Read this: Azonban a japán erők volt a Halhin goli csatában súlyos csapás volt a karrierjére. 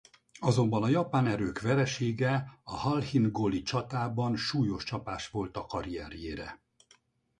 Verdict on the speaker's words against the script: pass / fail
fail